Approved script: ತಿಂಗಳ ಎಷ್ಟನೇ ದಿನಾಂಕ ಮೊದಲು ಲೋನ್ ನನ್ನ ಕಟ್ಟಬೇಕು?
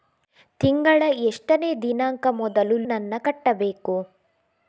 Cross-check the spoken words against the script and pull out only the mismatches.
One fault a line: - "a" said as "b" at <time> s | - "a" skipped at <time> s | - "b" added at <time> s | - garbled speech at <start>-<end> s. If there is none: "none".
- "ಲೋನ್" skipped at 2.8 s